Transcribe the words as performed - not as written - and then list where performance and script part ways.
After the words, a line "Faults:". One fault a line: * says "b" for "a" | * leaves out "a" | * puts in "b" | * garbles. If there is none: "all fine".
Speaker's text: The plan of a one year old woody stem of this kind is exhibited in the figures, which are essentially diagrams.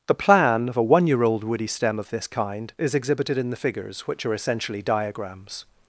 The plan of a one year old woody stem of this kind is exhibited in the figures, which are essentially diagrams.
Faults:
all fine